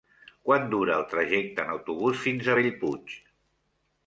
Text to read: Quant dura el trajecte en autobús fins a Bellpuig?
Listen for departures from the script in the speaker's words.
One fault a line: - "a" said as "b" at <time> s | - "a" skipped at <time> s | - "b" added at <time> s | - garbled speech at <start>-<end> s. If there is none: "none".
none